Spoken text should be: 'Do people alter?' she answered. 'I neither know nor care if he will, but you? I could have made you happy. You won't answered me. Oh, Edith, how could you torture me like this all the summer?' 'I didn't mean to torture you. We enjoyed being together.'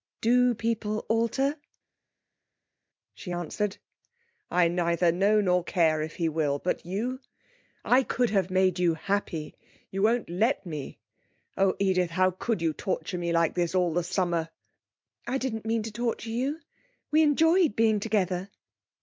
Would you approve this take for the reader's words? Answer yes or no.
no